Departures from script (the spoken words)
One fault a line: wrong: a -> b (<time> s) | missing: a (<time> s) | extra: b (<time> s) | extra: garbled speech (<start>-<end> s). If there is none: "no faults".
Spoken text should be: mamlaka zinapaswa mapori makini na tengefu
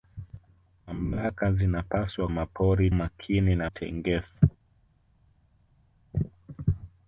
no faults